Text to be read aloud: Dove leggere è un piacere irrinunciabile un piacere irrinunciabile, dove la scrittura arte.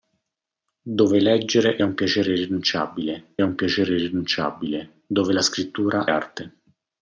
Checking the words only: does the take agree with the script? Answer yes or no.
yes